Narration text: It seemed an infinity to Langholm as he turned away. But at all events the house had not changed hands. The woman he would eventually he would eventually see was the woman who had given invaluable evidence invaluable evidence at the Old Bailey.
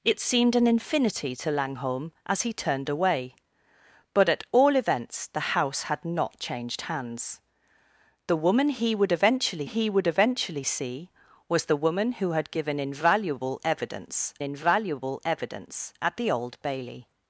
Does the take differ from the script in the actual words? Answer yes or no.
no